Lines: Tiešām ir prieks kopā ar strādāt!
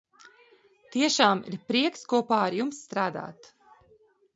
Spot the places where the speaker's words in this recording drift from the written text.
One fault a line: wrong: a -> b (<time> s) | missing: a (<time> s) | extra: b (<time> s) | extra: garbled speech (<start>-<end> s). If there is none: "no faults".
extra: jums (2.6 s)